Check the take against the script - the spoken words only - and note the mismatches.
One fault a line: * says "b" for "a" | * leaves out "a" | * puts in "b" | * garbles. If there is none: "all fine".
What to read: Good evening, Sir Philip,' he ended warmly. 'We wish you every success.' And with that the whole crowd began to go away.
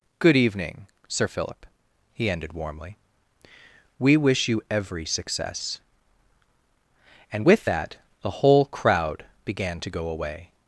all fine